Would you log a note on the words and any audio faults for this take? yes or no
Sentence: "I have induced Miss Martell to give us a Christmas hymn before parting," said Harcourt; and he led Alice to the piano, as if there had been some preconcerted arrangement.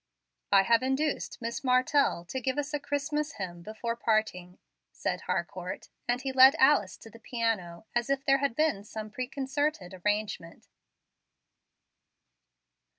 no